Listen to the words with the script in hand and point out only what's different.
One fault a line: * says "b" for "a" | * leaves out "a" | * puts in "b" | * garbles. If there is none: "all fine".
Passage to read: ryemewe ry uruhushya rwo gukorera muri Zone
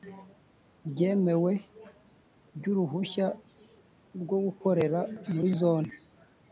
all fine